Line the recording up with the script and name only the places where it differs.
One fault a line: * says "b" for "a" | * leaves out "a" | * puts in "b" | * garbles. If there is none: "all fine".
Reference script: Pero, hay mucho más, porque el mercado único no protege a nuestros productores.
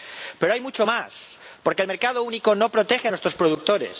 all fine